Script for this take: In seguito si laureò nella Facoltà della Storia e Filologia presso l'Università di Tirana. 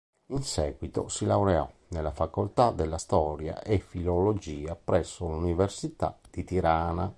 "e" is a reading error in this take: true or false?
false